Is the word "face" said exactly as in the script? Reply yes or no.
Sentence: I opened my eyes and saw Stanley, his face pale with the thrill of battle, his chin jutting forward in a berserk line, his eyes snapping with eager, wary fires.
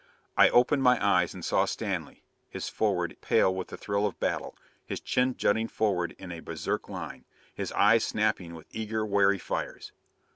no